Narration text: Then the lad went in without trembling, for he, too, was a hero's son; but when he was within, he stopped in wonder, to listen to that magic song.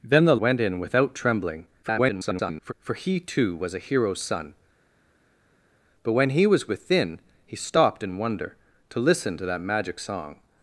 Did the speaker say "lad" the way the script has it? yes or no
no